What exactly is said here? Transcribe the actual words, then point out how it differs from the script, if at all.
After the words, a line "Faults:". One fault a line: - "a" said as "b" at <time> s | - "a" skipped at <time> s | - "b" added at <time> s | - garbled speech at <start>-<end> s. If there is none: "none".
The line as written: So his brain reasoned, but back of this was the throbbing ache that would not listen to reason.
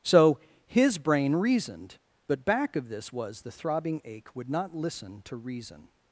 So his brain reasoned, but back of this was the throbbing ache would not listen to reason.
Faults:
- "that" skipped at 4.3 s